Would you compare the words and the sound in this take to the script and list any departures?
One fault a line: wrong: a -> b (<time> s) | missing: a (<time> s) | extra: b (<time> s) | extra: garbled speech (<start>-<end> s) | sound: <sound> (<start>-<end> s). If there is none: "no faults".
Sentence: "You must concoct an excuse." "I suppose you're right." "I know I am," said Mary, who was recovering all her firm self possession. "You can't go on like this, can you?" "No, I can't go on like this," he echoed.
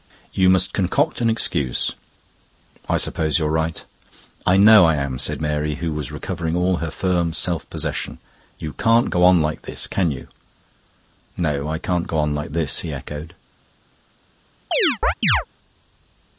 sound: chirp (14.7-15.5 s)